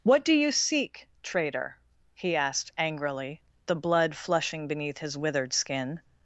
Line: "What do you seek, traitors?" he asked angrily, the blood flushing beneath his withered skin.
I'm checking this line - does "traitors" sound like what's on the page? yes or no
no